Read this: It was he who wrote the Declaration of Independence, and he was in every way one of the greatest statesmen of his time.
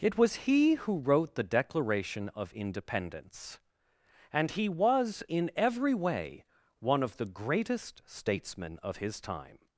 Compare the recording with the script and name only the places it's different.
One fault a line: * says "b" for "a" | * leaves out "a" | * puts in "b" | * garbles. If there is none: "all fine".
all fine